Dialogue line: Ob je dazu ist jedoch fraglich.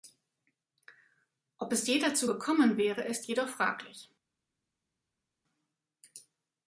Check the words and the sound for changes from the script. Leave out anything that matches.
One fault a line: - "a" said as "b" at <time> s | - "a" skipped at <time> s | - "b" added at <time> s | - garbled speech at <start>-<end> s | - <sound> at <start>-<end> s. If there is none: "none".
- "es" added at 1.7 s
- "gekommen wäre" added at 2.3 s